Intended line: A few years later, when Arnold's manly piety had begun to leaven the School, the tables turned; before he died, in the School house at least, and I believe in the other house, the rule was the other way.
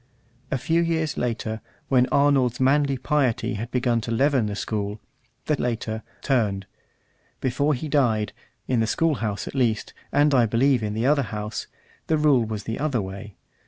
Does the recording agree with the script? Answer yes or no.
no